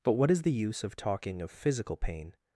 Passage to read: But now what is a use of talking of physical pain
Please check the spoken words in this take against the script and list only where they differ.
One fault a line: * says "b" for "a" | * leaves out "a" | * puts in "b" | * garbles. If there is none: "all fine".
* leaves out "now"
* says "the" for "a"